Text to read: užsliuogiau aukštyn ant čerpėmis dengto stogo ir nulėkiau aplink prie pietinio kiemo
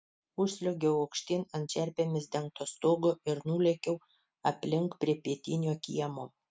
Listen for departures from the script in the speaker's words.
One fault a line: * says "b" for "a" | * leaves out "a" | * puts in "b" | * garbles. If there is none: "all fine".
all fine